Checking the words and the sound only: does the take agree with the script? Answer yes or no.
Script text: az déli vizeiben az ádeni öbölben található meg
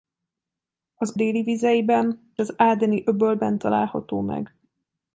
yes